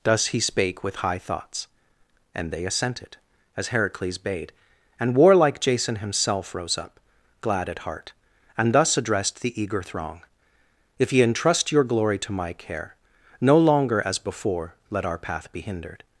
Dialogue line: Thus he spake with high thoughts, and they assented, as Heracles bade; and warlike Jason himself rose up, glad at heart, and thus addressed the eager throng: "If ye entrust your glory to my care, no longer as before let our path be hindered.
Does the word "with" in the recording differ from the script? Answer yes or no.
no